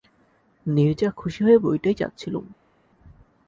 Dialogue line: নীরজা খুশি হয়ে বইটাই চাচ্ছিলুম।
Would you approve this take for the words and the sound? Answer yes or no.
yes